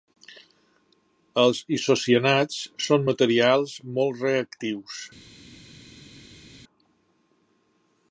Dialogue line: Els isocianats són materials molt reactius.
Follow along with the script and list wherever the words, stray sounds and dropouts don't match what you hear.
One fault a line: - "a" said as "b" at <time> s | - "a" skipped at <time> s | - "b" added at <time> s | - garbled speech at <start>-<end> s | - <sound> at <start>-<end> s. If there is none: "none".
none